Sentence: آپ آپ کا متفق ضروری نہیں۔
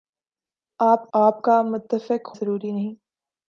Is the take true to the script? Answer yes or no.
yes